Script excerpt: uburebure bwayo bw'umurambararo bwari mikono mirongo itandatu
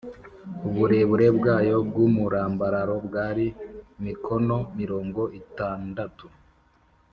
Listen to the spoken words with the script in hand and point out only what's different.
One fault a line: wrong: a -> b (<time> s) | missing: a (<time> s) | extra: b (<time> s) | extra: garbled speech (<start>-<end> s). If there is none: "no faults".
no faults